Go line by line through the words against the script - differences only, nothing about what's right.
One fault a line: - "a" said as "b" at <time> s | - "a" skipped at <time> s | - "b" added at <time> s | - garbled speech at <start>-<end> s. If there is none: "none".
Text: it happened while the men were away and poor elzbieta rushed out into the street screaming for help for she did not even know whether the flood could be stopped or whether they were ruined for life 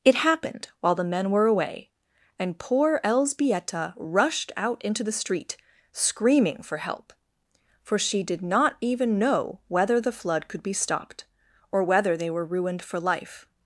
none